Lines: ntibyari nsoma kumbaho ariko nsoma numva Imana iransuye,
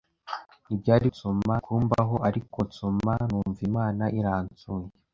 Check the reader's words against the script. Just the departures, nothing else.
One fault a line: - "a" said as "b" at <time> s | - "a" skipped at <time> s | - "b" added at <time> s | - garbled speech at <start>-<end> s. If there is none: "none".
none